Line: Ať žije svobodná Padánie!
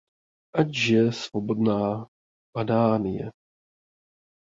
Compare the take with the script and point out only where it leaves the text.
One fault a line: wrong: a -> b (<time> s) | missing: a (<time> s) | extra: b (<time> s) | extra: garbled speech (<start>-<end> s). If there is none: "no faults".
no faults